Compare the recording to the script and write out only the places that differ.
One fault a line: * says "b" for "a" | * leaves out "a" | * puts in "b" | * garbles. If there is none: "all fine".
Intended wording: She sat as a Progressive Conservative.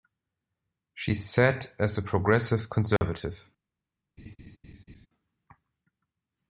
all fine